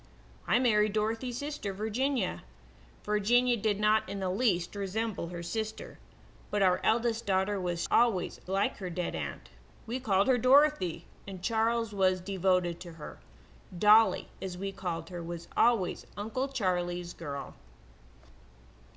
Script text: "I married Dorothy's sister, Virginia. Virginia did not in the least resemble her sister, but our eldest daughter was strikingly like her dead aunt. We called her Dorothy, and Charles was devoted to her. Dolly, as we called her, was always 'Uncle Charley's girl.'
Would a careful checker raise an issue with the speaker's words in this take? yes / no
yes